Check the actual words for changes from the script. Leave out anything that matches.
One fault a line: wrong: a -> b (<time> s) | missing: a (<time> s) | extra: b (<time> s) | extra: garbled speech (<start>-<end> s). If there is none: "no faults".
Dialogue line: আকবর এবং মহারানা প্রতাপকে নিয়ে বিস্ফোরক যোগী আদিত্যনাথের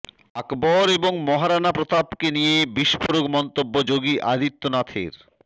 extra: মন্তব্য (3.4 s)